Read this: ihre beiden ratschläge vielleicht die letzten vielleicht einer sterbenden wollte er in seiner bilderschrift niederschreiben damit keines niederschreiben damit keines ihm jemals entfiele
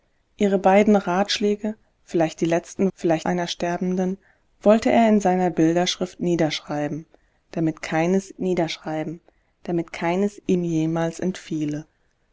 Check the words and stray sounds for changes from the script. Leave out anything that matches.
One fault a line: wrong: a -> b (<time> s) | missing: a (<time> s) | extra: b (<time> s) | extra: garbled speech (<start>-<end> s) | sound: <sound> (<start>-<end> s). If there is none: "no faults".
no faults